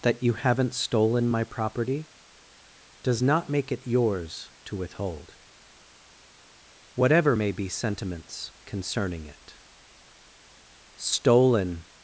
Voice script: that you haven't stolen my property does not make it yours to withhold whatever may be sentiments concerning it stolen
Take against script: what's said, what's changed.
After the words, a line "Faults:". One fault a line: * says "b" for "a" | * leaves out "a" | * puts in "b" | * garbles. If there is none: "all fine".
that you haven't stolen my property does not make it yours to withhold whatever may be sentiments concerning it stolen
Faults:
all fine